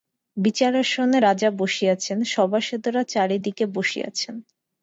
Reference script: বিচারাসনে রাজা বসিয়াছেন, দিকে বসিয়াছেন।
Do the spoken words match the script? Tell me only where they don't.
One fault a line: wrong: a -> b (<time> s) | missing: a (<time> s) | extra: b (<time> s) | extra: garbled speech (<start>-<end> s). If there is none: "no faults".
extra: সভাসদেরা চারি (2.3 s)